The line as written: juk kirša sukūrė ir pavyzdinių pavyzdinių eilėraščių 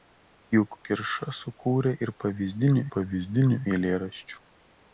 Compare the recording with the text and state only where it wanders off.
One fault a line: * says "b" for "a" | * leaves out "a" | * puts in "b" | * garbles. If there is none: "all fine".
all fine